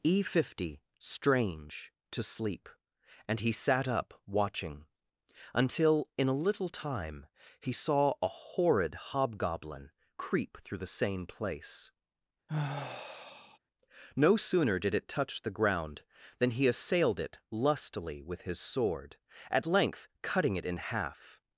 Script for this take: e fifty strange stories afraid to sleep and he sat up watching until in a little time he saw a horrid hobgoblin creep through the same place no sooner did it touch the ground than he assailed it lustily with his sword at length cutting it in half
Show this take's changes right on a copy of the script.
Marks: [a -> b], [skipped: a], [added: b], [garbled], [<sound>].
e fifty strange [skipped: stories afraid] to sleep and he sat up watching until in a little time he saw a horrid hobgoblin creep through the same place [sigh] no sooner did it touch the ground than he assailed it lustily with his sword at length cutting it in half